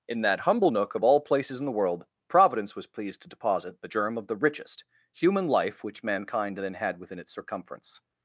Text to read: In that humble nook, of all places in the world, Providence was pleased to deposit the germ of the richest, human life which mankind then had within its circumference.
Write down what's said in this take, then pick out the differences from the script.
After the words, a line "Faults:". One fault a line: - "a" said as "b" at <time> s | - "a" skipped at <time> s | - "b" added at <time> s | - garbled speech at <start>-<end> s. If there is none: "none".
In that humble nook, of all places in the world, Providence was pleased to deposit the germ of the richest, human life which mankind then had within its circumference.
Faults:
none